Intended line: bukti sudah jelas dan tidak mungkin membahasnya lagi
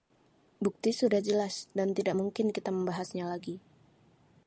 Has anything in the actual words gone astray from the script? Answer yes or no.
yes